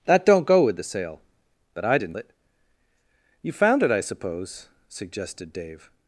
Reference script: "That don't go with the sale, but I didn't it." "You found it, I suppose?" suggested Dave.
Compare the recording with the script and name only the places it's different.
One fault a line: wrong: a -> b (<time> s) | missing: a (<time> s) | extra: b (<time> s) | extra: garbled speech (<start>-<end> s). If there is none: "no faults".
no faults